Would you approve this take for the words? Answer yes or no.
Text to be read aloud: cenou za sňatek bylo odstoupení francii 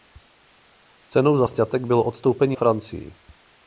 yes